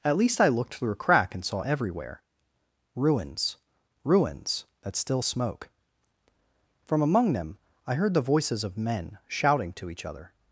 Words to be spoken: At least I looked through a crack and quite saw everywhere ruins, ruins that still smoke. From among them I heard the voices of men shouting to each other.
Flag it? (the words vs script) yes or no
yes